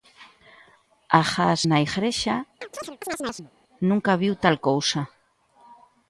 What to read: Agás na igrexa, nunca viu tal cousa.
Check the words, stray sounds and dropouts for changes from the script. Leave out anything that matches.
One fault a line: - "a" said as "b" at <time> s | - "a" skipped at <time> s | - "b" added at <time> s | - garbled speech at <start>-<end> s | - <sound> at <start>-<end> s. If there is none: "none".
- chirp at 2.6-3.5 s